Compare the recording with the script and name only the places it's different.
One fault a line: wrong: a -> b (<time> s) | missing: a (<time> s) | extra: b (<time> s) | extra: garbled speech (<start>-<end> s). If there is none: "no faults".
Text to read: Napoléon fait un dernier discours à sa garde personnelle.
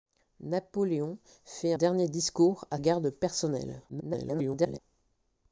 missing: un (1.7 s)
missing: sa (2.8 s)
extra: garbled speech (3.9-4.8 s)